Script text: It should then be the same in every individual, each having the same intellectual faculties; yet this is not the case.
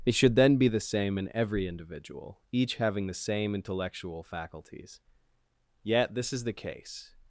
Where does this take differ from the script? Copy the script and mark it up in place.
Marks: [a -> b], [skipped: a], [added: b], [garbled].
It should then be the same in every individual, each having the same intellectual faculties; yet this is [skipped: not] the case.